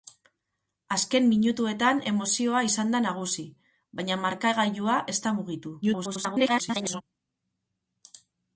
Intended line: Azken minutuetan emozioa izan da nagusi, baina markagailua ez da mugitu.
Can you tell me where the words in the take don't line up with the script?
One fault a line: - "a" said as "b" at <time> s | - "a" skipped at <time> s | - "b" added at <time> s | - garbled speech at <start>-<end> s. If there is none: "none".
- garbled speech at 5.8-7.0 s